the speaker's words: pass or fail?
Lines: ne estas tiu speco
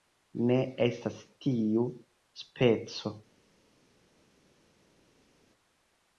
pass